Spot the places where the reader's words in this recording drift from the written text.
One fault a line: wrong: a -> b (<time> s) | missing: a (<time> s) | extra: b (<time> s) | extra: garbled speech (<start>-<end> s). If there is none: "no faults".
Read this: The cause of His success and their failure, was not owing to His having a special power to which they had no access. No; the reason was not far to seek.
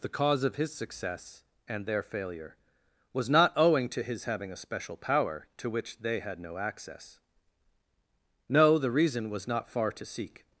no faults